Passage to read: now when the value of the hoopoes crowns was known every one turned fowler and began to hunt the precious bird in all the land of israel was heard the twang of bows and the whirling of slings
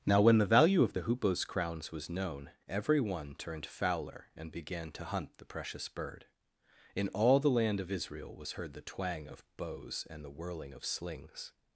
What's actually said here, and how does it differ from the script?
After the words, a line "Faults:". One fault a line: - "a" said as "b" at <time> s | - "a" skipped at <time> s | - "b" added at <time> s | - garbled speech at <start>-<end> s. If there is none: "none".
now when the value of the hoopoes crowns was known every one turned fowler and began to hunt the precious bird in all the land of israel was heard the twang of bows and the whirling of slings
Faults:
none